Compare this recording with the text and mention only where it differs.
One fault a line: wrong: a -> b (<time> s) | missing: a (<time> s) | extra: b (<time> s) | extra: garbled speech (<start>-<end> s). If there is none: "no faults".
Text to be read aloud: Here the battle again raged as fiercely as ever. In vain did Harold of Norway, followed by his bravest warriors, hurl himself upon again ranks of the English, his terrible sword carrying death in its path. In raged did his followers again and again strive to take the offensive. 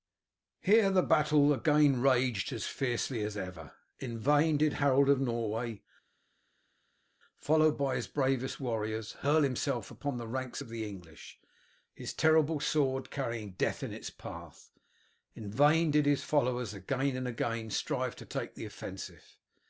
wrong: again -> the (10.2 s)
wrong: raged -> vain (15.5 s)